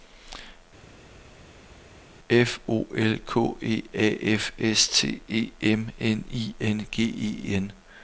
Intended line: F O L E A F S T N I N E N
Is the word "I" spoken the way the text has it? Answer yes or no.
yes